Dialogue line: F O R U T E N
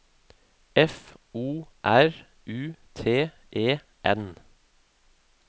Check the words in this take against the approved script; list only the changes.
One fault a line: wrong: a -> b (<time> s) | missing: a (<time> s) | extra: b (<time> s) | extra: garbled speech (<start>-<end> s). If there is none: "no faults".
no faults